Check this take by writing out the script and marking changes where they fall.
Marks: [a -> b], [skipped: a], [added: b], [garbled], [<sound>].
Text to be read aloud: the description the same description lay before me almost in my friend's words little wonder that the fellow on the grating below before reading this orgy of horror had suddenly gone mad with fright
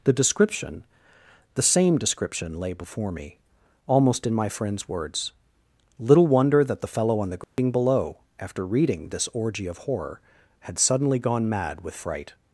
the description the same description lay before me almost in my friend's words little wonder that the fellow on the grating [dropout] below [before -> after] reading this orgy of horror had suddenly gone mad with fright